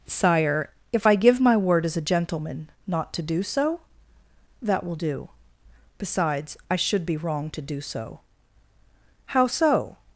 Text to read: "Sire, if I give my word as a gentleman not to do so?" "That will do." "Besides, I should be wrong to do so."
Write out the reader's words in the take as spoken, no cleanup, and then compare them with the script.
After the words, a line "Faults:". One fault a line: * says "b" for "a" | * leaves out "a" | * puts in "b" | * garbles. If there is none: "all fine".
"Sire, if I give my word as a gentleman not to do so?" "That will do." "Besides, I should be wrong to do so." "How so
Faults:
* puts in "How so"